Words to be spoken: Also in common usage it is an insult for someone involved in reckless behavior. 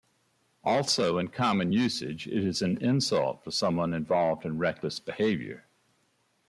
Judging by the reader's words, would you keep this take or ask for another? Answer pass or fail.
pass